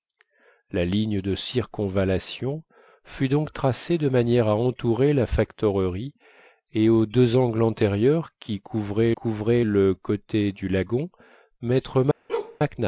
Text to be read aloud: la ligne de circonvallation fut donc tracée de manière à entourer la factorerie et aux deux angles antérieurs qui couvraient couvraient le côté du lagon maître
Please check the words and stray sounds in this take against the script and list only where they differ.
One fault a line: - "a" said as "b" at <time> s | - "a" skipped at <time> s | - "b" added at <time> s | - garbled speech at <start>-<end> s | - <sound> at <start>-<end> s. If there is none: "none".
- bark at 12.3-12.6 s